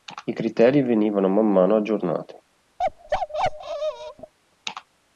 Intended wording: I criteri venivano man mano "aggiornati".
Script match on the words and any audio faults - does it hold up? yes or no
no